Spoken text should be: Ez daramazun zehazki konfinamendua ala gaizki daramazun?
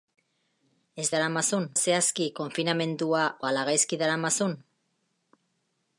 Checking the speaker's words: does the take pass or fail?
pass